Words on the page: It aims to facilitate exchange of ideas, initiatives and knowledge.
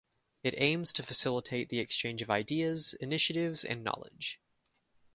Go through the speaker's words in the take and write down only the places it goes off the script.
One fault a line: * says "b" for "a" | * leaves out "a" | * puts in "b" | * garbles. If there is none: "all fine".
* puts in "the"